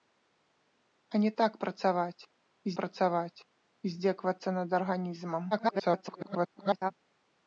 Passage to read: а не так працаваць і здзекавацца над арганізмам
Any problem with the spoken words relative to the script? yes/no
yes